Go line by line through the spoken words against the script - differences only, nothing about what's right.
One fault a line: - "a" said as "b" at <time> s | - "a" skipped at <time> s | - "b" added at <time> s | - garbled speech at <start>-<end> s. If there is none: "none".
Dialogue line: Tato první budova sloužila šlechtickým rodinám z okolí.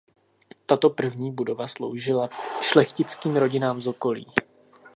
none